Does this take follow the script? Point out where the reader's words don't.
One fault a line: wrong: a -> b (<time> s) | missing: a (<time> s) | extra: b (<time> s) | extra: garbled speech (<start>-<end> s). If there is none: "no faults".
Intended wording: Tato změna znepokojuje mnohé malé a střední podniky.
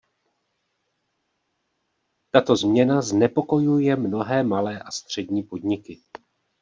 no faults